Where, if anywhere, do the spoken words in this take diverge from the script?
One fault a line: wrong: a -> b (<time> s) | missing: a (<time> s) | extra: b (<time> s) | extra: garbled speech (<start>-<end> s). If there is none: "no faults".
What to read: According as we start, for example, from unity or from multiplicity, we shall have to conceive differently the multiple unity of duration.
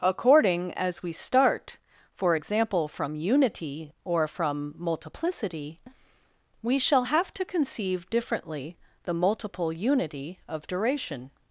no faults